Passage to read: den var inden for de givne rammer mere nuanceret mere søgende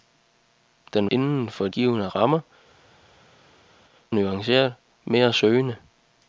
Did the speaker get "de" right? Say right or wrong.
wrong